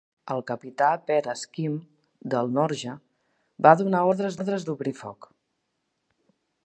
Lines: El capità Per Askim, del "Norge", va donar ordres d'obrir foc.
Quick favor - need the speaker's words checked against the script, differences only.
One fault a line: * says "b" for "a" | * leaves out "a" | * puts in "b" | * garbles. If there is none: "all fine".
* puts in "ordres"